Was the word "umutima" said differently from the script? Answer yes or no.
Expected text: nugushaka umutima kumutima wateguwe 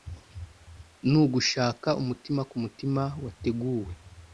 no